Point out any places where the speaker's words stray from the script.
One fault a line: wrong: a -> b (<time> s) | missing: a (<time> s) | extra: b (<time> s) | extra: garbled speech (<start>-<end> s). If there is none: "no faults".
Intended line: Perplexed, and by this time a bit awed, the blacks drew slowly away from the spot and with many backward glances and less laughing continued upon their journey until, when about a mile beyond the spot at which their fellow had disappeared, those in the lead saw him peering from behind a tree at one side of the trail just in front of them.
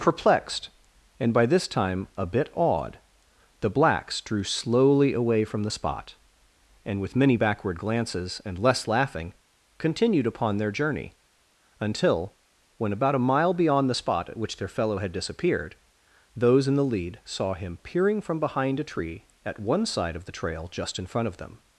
no faults